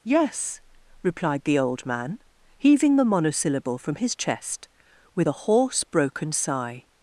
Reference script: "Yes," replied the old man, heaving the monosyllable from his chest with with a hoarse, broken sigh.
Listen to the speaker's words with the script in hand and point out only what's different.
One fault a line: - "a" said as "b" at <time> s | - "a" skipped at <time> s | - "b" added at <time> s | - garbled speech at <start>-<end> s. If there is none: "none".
- "with" skipped at 5.3 s